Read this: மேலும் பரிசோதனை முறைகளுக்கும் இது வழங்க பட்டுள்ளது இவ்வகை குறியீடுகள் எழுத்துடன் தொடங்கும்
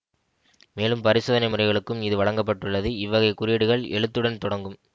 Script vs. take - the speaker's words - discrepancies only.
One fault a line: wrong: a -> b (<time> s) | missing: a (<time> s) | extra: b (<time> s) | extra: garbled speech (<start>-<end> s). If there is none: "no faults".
no faults